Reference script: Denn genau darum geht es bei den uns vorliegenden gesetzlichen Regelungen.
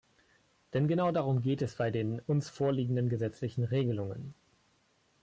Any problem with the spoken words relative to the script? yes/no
no